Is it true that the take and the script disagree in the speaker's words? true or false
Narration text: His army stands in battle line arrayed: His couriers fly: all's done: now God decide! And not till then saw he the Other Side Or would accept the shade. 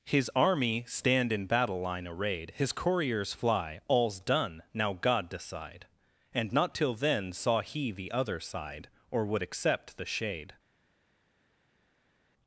true